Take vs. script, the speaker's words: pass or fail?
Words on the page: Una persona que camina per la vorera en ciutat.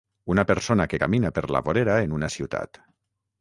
fail